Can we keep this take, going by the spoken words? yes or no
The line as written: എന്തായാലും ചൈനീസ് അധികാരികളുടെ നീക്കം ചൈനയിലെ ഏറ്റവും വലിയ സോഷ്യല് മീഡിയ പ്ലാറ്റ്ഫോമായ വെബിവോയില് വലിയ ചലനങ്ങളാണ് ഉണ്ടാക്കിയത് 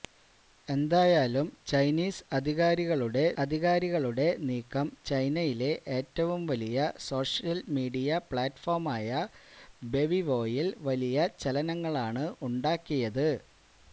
no